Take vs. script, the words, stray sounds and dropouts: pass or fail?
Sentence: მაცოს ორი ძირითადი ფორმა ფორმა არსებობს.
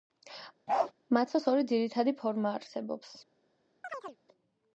fail